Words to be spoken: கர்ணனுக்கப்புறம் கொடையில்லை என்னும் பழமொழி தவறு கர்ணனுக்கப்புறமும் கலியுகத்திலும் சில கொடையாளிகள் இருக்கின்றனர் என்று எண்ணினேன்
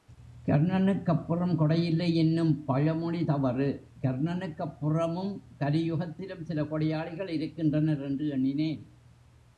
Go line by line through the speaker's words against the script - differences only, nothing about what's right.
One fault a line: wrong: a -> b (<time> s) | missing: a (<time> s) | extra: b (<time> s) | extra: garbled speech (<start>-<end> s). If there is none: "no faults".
no faults